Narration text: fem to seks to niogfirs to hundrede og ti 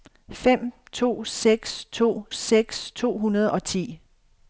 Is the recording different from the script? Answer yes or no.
yes